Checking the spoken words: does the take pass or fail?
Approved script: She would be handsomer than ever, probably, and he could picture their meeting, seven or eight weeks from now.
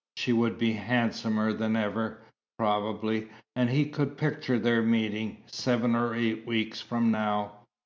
pass